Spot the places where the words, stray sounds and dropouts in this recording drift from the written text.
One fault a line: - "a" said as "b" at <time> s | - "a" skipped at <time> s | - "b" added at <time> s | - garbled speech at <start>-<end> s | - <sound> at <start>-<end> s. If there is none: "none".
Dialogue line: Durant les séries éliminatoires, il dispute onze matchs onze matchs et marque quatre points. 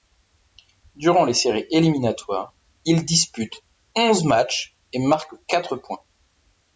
- "onze matchs" skipped at 4.8 s